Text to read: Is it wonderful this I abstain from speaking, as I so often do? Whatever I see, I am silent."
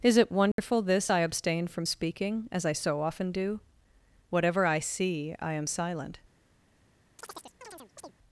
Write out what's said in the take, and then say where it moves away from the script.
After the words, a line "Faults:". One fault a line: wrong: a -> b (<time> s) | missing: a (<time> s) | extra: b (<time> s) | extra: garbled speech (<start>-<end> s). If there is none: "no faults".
Is it wonderful this I abstain from speaking, as I so often do? Whatever I see, I am silent."
Faults:
no faults